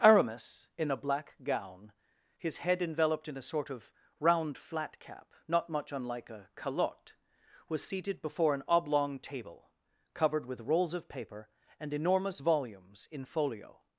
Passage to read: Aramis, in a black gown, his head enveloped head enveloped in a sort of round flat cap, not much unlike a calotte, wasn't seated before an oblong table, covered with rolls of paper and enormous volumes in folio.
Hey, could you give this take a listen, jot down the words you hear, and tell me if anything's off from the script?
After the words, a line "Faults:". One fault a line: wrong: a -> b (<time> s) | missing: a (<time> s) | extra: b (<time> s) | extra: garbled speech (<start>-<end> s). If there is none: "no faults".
Aramis, in a black gown, his head enveloped in a sort of round flat cap, not much unlike a calotte, was seated before an oblong table, covered with rolls of paper and enormous volumes in folio.
Faults:
missing: head enveloped (3.3 s)
wrong: wasn't -> was (7.7 s)